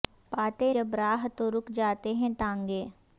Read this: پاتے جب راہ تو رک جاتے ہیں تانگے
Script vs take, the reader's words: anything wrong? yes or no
no